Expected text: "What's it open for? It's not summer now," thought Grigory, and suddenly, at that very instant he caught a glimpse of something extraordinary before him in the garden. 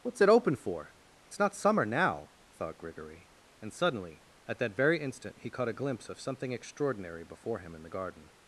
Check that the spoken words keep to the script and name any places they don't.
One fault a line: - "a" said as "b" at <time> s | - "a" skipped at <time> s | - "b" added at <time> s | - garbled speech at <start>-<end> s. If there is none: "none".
none